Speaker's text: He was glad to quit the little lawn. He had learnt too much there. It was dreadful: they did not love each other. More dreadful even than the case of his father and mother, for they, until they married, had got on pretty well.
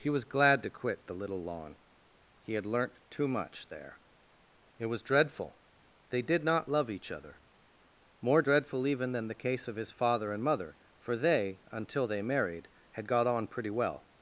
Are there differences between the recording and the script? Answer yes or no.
no